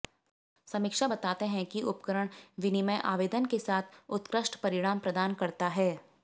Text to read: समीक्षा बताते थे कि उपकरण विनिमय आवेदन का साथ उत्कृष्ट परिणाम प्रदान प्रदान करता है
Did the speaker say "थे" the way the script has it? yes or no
no